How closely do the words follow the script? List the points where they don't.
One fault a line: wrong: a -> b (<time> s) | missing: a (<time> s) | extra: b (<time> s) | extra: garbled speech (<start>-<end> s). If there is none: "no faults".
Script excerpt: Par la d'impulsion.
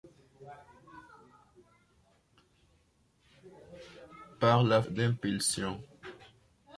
no faults